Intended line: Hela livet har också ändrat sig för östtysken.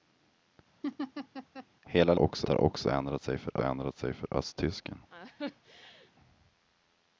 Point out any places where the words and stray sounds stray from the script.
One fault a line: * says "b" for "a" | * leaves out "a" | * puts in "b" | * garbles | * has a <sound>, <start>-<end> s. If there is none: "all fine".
* has a laugh, 0.8-1.7 s
* says "också" for "livet"
* puts in "ändrat sig för"
* has a laugh, 5.1-6.1 s